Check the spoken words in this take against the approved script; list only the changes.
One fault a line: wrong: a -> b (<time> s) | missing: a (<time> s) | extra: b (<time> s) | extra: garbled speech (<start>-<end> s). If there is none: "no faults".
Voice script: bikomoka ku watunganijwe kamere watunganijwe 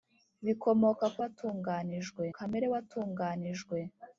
no faults